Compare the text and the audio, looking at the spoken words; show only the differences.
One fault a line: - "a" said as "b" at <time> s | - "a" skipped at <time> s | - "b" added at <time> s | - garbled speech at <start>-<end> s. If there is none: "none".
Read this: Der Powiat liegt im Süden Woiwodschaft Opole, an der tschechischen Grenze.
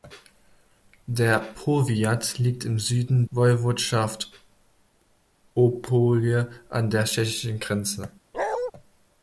none